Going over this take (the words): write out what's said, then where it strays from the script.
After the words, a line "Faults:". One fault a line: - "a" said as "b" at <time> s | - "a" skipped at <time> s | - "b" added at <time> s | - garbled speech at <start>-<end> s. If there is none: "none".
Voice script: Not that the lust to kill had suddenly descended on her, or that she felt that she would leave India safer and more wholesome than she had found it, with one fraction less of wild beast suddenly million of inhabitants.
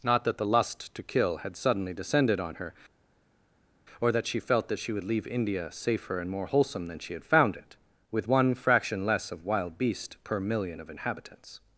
Not that the lust to kill had suddenly descended on her, or that she felt that she would leave India safer and more wholesome than she had found it, with one fraction less of wild beast per million of inhabitants.
Faults:
- "suddenly" said as "per" at 10.2 s